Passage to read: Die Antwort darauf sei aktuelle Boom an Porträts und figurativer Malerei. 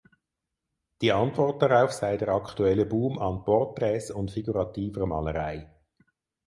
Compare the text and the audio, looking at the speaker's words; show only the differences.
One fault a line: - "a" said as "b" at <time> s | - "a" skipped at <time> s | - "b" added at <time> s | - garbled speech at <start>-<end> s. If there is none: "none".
- "der" added at 2.2 s